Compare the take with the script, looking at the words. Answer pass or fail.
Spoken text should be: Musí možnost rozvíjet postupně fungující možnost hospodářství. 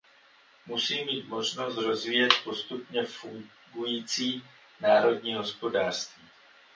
fail